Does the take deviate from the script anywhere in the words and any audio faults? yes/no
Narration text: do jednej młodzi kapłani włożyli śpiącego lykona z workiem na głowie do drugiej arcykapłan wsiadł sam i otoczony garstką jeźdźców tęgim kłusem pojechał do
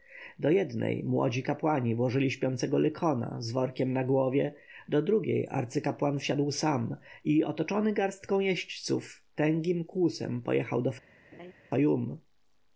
yes